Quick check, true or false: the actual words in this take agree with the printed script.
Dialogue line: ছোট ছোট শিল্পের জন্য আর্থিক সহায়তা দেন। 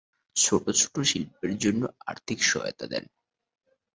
true